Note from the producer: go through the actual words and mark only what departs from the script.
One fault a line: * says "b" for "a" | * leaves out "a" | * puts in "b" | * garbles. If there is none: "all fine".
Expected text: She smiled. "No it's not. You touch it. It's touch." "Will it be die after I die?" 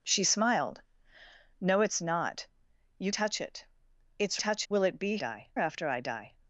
all fine